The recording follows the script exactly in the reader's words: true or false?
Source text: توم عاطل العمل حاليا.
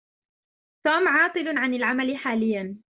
false